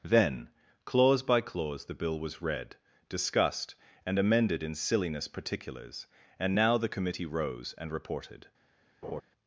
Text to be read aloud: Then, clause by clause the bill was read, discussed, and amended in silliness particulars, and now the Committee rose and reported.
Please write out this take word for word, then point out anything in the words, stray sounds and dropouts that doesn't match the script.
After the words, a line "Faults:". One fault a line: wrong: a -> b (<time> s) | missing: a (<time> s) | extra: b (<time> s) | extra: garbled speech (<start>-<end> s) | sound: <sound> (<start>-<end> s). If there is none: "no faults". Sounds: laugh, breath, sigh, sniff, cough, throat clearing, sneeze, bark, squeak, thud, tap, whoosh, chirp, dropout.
Then, clause by clause the bill was read, discussed, and amended in silliness particulars, and now the Committee rose and reported.
Faults:
sound: laugh (9.0-9.2 s)